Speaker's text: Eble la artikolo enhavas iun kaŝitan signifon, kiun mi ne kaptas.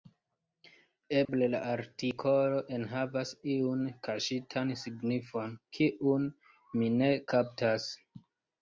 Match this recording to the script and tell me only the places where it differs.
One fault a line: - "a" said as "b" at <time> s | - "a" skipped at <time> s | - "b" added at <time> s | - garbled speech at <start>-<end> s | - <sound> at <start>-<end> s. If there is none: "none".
- dropout at 1.2-1.3 s